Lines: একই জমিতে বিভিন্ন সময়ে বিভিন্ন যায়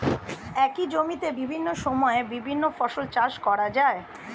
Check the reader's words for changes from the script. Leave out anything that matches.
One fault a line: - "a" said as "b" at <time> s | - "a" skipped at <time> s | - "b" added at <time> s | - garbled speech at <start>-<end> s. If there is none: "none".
- "ফসল চাষ করা" added at 2.8 s